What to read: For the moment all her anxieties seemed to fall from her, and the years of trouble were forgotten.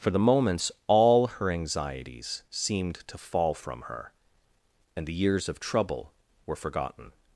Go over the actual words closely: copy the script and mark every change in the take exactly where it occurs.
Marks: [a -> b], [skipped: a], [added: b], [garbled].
For the [moment -> moments] all her anxieties seemed to fall from her, and the years of trouble were forgotten.